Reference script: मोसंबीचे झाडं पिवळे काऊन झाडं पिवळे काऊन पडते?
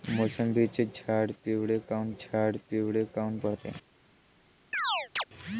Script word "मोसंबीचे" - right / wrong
right